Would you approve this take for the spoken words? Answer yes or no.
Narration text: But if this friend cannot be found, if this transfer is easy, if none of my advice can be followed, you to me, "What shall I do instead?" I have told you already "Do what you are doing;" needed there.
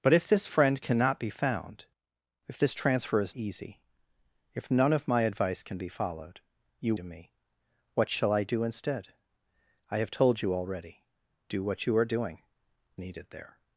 yes